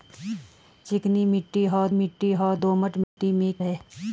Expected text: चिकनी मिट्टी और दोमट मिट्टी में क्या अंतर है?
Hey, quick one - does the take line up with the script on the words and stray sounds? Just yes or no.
no